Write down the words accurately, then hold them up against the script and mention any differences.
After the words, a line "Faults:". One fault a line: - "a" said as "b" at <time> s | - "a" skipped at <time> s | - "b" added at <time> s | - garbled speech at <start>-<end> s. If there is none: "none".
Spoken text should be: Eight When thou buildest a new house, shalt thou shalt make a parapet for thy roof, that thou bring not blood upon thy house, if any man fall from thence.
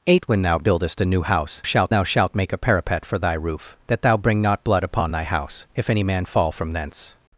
Eight When thou buildest a new house, shalt thou shalt make a parapet for thy roof, that thou bring not blood upon thy house, if any man fall from thence.
Faults:
none